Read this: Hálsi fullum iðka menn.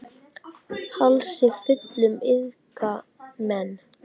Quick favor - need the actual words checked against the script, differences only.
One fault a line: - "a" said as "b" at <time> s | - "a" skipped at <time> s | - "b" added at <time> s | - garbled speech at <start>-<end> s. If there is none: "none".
none